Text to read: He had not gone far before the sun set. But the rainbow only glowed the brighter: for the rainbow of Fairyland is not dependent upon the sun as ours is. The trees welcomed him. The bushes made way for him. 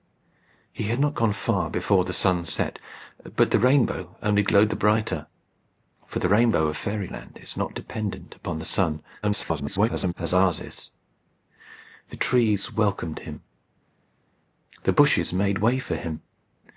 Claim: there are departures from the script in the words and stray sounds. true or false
true